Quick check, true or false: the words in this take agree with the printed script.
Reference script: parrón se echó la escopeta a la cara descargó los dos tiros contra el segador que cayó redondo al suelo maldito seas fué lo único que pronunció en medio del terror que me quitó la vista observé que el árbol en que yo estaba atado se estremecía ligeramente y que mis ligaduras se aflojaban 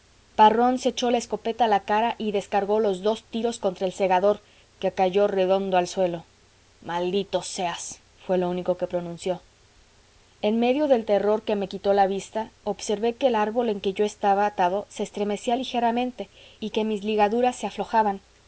false